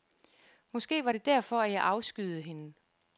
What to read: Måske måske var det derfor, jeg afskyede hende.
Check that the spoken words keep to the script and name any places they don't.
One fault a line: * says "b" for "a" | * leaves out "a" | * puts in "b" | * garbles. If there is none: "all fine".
* leaves out "måske"
* puts in "at"